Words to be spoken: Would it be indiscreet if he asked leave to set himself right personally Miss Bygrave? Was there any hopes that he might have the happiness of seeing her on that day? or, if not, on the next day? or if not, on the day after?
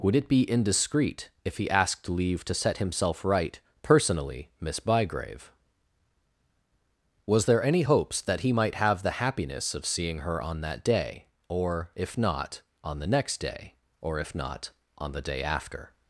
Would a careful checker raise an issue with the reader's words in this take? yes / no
no